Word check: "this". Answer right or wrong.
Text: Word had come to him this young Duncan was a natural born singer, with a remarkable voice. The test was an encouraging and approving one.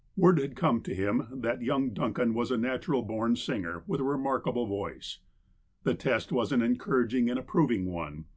wrong